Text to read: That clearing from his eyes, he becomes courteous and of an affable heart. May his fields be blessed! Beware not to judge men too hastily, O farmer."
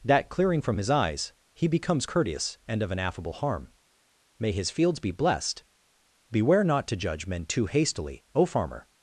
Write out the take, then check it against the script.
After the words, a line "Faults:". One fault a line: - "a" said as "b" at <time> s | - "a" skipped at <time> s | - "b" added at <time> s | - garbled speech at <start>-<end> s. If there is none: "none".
That clearing from his eyes, he becomes courteous and of an affable harm. May his fields be blessed! Beware not to judge men too hastily, O farmer."
Faults:
- "heart" said as "harm" at 3.3 s